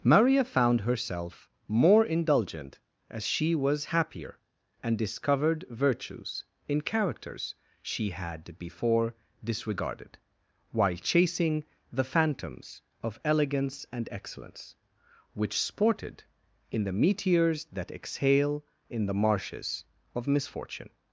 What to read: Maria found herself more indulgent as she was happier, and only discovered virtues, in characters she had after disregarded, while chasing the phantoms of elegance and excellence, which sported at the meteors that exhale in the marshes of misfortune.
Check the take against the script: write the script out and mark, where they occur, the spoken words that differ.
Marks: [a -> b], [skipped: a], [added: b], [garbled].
Maria found herself more indulgent as she was happier, and [skipped: only] discovered virtues, in characters she had [after -> before] disregarded, while chasing the phantoms of elegance and excellence, which sported [at -> in] the meteors that exhale in the marshes of misfortune.